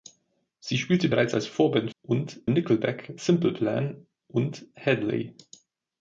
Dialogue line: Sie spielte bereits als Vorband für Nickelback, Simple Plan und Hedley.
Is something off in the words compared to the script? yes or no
yes